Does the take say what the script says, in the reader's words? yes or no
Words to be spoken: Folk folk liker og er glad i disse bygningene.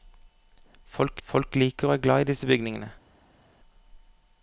yes